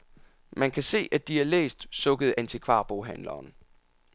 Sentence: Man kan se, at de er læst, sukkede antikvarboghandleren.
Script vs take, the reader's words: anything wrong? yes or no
no